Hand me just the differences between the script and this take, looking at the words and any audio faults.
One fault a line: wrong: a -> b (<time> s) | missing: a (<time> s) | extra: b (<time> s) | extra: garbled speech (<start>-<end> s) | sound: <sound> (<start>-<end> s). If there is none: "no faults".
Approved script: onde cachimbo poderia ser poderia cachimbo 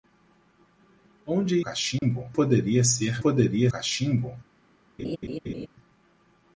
sound: dropout (2.0-2.0 s)
sound: laugh (5.0-5.7 s)